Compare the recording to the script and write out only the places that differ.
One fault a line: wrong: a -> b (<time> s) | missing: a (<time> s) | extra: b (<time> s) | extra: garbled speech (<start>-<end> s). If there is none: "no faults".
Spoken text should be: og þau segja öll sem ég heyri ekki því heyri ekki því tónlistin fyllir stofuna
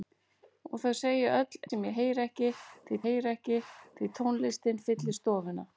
no faults